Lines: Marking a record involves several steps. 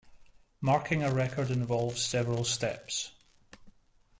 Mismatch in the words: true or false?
false